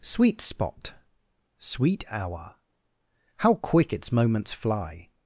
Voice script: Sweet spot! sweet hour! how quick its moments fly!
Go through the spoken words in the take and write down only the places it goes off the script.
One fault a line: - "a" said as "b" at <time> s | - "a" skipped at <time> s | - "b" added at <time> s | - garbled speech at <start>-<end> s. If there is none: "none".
none